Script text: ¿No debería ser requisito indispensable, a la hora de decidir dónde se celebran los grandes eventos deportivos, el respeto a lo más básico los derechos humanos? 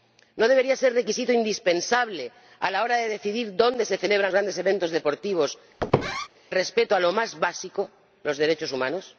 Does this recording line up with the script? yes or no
no